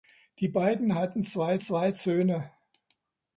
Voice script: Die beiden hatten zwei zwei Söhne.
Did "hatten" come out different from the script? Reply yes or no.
no